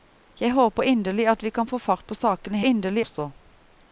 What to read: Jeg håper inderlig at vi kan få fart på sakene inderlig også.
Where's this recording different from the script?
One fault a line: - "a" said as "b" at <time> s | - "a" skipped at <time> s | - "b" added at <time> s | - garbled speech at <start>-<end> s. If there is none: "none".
none